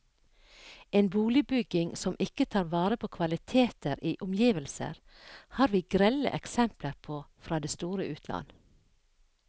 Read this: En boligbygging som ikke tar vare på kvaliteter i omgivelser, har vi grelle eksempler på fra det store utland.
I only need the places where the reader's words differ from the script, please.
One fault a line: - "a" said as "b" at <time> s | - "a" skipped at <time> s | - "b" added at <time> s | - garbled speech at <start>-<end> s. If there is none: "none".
none